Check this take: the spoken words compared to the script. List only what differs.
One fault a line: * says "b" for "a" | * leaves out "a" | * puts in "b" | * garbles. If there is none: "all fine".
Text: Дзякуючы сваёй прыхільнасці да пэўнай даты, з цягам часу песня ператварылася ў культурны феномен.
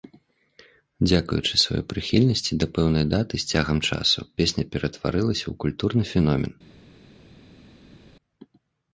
all fine